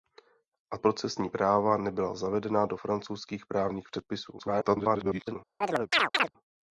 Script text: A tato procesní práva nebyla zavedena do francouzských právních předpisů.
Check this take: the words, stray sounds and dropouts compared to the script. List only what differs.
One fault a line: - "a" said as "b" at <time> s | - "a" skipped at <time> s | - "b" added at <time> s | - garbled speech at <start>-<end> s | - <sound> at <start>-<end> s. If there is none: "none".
- "tato" skipped at 0.8 s
- garbled speech at 4.4-5.4 s
- chirp at 5.6-6.3 s